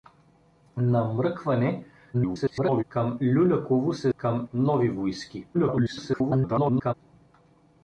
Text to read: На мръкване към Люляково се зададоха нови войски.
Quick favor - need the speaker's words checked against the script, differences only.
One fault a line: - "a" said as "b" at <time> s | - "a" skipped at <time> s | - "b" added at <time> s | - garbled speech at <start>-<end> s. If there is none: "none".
- garbled speech at 2.1-2.8 s
- "зададоха" said as "към" at 4.2 s
- garbled speech at 5.5-6.9 s